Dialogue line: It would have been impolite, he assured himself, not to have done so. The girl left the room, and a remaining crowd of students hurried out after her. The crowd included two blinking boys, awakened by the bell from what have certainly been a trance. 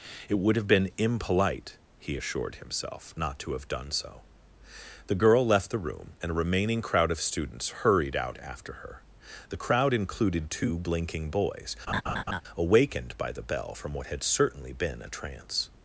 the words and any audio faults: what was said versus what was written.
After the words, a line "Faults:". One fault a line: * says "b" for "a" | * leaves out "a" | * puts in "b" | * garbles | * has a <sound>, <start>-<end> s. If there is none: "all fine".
It would have been impolite, he assured himself, not to have done so. The girl left the room, and a remaining crowd of students hurried out after her. The crowd included two blinking boys, awakened by the bell from what had certainly been a trance.
Faults:
* has a laugh, 11.9-12.4 s
* says "had" for "have"